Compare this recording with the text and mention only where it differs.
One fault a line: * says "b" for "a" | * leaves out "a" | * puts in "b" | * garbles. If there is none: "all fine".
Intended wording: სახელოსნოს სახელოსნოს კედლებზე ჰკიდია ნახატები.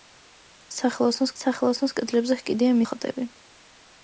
all fine